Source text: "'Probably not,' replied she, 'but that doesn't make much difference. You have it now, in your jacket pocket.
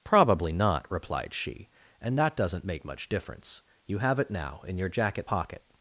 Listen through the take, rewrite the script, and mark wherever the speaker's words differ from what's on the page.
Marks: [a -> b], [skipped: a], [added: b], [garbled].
"'Probably not,' replied she, ['but -> and] that doesn't make much difference. You have it now, in your jacket pocket.